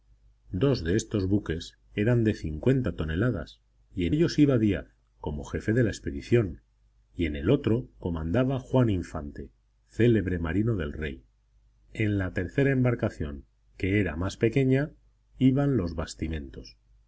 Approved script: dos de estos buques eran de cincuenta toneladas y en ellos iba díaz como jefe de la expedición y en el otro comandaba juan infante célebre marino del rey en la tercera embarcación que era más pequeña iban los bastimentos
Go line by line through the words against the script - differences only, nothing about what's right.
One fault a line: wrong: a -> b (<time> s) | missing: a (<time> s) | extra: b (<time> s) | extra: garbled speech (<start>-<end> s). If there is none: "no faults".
no faults